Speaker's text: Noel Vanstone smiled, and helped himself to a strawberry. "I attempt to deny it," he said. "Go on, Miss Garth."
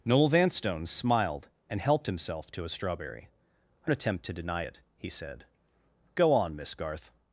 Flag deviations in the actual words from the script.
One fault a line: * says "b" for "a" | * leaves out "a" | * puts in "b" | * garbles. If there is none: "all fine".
all fine